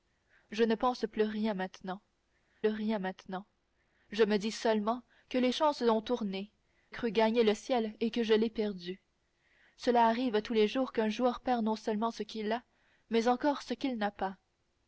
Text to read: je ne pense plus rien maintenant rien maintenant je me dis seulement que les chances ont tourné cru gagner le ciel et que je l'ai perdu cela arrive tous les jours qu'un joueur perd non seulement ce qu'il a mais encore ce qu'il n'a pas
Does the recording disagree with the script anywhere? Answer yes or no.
no